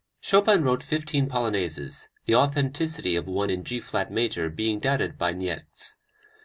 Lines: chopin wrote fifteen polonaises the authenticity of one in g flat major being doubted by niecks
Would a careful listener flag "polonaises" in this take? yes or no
no